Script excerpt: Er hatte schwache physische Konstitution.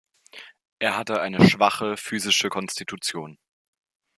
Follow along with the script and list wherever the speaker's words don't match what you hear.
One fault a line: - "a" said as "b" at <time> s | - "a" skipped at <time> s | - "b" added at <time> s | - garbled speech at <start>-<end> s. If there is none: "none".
- "eine" added at 1.2 s